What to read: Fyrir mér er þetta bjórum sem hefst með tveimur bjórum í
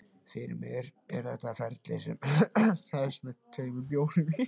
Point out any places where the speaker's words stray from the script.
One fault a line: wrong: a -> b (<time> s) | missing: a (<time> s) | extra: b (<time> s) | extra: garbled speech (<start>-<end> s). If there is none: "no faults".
wrong: bjórum -> ferli (1.6 s)